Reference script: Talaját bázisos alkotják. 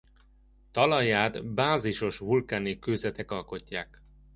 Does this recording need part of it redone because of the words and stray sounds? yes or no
yes